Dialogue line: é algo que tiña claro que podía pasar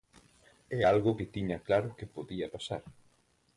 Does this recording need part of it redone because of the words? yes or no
no